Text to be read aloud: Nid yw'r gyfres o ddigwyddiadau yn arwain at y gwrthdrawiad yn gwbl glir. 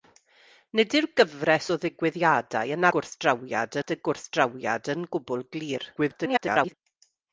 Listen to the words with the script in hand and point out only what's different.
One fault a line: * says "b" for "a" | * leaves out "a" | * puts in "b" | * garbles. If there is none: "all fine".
* says "gwrthdrawiad" for "arwain"
* garbles